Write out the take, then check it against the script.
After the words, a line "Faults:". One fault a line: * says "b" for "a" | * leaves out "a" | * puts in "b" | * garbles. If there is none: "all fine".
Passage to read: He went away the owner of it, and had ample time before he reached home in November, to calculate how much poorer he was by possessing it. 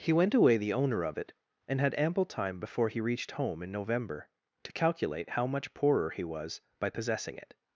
He went away the owner of it, and had ample time before he reached home in November, to calculate how much poorer he was by possessing it.
Faults:
all fine